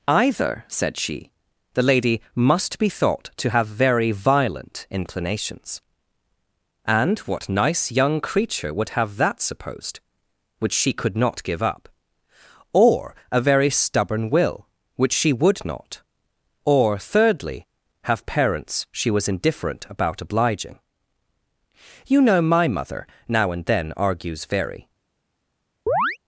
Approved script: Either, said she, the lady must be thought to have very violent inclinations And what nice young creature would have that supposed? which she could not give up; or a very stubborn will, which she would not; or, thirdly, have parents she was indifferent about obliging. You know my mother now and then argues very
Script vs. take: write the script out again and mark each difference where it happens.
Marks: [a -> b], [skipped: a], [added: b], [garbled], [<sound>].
Either, said she, the lady must be thought to have very violent inclinations And what nice young creature would have that supposed? which she could not give up; or a very stubborn will, which she would not; or, thirdly, have parents she was indifferent about obliging. You know my mother now and then argues very [chirp]